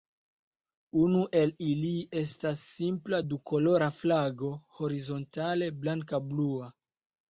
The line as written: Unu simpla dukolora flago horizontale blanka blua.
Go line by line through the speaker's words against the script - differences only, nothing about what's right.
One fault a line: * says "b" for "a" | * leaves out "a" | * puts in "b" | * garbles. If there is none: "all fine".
* puts in "el ili estas"